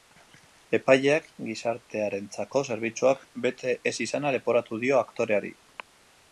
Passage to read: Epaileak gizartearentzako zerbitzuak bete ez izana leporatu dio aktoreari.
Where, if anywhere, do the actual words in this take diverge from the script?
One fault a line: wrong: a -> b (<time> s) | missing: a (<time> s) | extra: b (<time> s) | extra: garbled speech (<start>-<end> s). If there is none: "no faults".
no faults